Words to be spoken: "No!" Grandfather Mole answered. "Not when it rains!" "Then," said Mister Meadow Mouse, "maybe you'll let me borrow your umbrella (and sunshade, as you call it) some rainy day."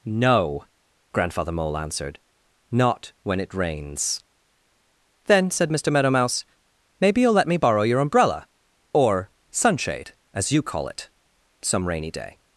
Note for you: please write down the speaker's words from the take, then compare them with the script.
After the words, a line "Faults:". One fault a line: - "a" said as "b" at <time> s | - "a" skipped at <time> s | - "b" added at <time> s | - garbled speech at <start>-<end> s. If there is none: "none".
"No!" Grandfather Mole answered. "Not when it rains!" "Then," said Mister Meadow Mouse, "maybe you'll let me borrow your umbrella (or sunshade, as you call it) some rainy day."
Faults:
- "and" said as "or" at 8.9 s